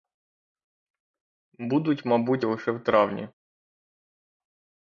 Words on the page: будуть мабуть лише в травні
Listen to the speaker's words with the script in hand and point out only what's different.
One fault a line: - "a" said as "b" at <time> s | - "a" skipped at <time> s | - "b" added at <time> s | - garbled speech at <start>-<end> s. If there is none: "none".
none